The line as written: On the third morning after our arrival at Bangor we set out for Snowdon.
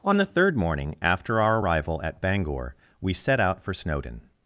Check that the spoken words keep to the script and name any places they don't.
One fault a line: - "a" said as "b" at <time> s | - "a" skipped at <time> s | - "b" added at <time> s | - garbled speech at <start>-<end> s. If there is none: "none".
none